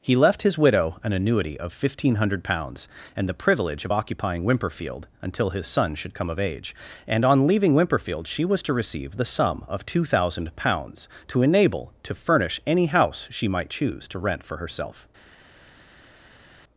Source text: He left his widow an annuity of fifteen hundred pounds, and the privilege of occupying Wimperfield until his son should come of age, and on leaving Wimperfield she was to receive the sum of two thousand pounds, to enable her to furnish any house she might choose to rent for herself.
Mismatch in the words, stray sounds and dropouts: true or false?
true